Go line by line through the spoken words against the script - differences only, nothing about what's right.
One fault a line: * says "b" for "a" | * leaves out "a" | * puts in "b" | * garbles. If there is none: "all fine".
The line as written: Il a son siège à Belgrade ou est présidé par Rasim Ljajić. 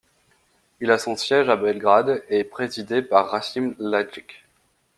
* says "et" for "ou"